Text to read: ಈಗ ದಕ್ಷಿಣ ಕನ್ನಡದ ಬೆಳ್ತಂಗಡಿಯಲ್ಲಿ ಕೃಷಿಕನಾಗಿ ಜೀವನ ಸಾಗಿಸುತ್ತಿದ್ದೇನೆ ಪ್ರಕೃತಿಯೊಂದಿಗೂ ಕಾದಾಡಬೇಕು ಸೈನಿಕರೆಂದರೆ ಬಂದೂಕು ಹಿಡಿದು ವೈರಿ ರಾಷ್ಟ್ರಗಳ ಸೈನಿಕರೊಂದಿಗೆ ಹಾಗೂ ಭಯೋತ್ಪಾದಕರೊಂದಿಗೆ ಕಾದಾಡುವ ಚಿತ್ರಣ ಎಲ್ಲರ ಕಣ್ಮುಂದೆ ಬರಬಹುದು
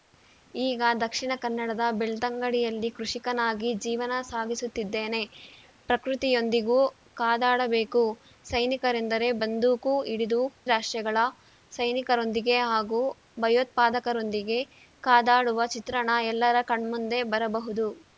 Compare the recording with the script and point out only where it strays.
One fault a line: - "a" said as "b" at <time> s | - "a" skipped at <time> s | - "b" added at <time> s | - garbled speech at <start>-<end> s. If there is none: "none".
- "ವೈರಿ" skipped at 10.4 s